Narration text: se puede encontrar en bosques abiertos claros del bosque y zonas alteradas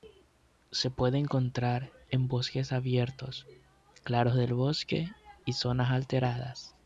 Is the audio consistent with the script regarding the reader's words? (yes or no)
yes